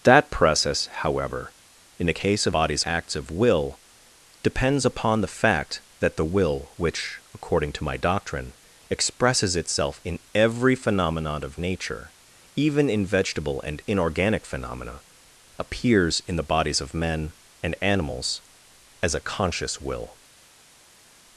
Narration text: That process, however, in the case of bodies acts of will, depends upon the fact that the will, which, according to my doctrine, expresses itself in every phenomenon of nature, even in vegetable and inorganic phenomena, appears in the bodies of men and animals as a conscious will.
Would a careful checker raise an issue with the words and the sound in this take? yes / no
no